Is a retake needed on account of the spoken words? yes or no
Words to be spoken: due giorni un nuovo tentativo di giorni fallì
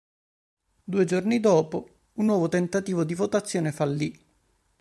yes